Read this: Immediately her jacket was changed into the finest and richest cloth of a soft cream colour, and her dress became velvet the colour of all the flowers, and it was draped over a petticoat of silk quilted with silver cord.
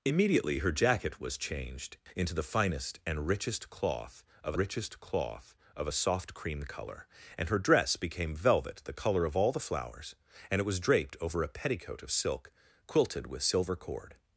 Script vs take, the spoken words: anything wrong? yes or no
yes